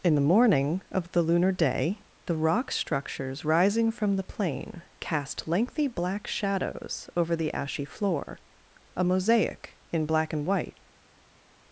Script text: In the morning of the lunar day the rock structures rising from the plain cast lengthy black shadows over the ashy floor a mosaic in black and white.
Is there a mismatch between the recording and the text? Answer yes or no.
no